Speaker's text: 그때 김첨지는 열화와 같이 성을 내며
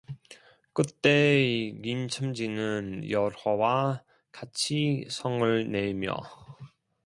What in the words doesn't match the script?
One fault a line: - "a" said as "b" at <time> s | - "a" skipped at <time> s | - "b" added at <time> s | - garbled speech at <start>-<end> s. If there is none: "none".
none